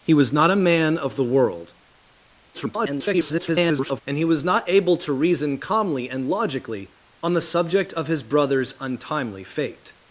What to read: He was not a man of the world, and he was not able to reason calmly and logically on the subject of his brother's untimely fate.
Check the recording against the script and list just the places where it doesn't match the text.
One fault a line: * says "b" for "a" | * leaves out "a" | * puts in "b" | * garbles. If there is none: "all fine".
* garbles